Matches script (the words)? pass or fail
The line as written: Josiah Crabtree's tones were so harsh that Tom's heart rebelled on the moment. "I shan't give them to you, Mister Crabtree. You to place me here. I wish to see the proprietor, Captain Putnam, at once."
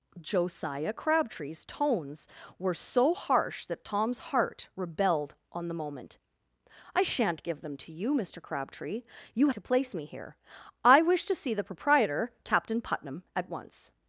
pass